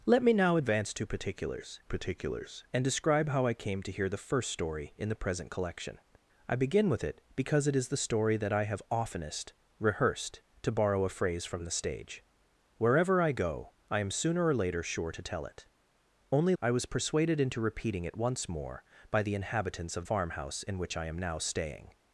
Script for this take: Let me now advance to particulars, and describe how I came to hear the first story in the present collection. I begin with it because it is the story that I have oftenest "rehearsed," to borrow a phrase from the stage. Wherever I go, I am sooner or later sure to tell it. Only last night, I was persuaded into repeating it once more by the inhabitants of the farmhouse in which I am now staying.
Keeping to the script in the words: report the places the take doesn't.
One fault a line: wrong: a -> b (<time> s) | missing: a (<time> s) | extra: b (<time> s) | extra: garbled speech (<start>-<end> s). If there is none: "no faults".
extra: particulars (1.9 s)
missing: last night (16.5 s)
missing: the (20.1 s)